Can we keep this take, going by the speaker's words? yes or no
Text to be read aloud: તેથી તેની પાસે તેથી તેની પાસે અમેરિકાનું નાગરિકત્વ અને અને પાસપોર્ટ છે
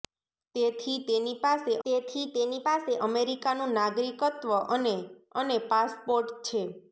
yes